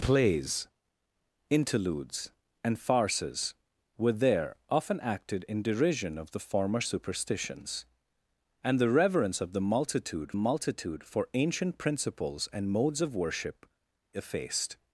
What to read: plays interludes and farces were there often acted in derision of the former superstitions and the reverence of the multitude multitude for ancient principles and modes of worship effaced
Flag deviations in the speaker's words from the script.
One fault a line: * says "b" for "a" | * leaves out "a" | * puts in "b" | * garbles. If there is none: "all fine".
all fine